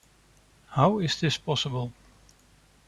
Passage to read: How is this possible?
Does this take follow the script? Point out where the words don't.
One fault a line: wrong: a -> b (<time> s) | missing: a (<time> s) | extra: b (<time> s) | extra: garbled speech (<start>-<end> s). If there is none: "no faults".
no faults